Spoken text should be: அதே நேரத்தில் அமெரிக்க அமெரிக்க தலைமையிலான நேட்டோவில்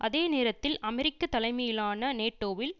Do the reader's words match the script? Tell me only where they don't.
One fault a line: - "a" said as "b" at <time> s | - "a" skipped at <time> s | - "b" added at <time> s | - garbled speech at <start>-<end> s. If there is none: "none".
- "அமெரிக்க" skipped at 1.3 s